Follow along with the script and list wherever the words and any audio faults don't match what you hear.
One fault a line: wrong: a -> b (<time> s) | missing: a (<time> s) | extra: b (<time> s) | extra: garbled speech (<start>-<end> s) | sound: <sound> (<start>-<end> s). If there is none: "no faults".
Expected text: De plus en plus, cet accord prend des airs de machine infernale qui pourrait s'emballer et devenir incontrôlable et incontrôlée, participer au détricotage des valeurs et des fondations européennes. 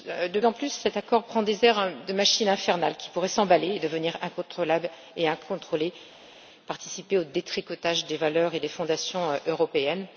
missing: plus (0.4 s)